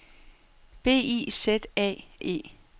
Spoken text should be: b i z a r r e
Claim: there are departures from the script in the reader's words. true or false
true